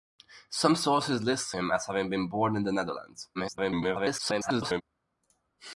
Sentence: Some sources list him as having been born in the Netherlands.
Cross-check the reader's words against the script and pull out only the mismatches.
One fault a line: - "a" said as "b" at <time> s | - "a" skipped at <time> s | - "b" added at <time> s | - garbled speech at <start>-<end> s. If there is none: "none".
- garbled speech at 3.3-4.8 s